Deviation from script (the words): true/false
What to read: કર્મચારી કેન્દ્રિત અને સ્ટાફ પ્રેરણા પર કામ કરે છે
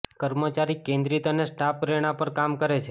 false